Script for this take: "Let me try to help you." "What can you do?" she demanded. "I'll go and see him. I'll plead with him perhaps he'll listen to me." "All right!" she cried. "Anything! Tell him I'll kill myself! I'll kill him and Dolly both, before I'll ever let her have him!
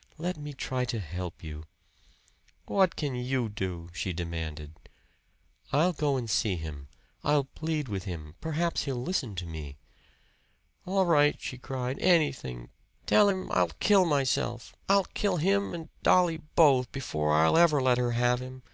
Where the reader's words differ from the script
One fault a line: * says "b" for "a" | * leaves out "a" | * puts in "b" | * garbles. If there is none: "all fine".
all fine